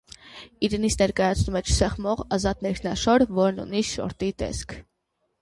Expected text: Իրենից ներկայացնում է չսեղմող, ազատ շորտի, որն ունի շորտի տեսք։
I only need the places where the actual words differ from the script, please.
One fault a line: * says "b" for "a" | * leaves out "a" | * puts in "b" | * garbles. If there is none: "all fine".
* says "ներքնաշոր" for "շորտի"